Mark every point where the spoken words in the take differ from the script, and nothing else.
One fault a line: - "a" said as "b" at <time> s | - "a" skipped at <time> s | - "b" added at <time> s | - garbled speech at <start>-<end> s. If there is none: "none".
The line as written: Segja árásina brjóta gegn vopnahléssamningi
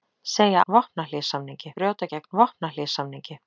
- "árásina" said as "vopnahléssamningi" at 0.6 s